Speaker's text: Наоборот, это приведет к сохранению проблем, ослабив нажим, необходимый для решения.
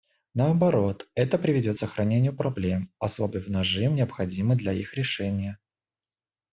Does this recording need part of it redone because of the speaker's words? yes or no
yes